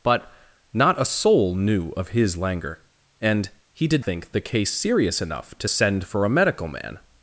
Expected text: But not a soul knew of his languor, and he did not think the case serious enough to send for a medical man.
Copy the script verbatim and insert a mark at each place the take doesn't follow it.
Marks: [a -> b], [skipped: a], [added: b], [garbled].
But not a soul knew of his languor, and he did [skipped: not] think the case serious enough to send for a medical man.